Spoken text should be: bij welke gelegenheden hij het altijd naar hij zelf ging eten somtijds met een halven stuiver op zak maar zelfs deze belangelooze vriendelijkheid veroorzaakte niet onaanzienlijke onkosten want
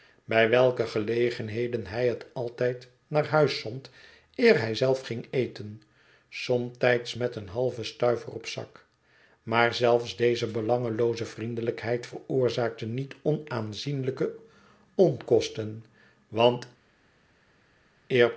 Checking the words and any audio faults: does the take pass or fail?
fail